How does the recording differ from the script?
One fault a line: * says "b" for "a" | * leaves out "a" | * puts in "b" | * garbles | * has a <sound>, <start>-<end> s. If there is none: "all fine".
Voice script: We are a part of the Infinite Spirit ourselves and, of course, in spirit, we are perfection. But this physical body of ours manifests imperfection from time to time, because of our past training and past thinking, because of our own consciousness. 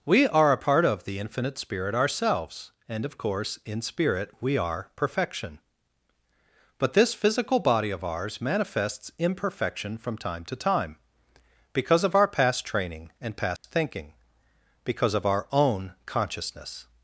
* has a dropout, 13.6-13.6 s